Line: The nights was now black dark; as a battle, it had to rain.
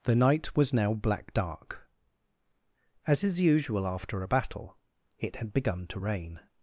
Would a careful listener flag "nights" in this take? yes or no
yes